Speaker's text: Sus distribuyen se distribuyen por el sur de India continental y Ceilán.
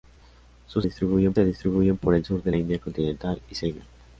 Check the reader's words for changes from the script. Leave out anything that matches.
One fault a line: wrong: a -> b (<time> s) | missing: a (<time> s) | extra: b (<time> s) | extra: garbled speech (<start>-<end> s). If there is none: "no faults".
no faults